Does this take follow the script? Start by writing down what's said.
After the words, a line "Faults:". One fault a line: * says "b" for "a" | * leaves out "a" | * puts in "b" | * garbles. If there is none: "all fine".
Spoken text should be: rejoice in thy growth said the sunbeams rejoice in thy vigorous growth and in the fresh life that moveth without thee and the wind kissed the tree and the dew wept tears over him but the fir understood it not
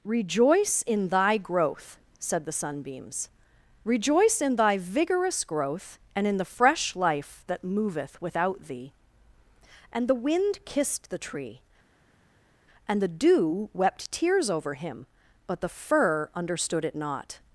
rejoice in thy growth said the sunbeams rejoice in thy vigorous growth and in the fresh life that moveth without thee and the wind kissed the tree and the dew wept tears over him but the fir understood it not
Faults:
all fine